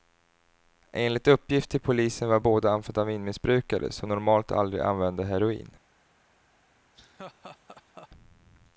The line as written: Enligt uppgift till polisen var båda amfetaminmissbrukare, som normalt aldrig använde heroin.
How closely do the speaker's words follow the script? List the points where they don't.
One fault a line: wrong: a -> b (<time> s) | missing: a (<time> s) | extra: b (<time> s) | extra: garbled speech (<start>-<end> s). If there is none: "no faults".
no faults